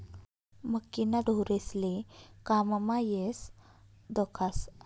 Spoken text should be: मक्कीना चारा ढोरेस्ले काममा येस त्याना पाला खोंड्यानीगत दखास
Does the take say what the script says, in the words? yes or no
no